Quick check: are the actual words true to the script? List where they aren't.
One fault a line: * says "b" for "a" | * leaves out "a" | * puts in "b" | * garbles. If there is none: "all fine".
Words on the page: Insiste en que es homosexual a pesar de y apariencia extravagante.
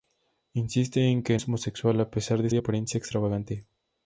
all fine